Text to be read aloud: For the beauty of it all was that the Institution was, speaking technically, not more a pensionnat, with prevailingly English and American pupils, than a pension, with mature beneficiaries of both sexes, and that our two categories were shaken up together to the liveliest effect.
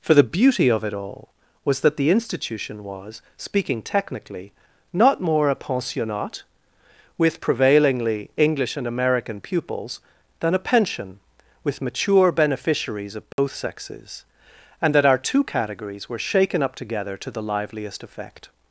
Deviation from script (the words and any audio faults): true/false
true